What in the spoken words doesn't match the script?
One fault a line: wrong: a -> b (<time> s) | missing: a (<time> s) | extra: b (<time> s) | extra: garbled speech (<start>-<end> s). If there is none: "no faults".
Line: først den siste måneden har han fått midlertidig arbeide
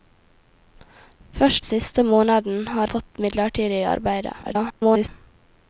missing: den (1.6 s)
missing: han (2.9 s)
extra: garbled speech (4.4-5.1 s)